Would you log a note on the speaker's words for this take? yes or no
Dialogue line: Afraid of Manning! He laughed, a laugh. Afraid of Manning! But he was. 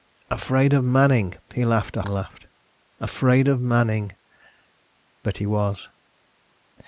no